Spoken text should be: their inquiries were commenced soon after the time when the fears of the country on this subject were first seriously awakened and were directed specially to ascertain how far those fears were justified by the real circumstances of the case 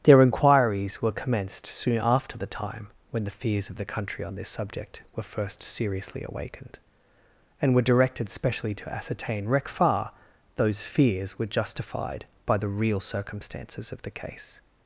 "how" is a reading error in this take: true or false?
true